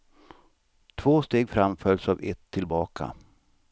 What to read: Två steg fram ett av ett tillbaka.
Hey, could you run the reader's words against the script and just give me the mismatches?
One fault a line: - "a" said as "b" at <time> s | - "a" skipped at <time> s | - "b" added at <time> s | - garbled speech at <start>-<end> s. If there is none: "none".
- "ett" said as "följs" at 1.8 s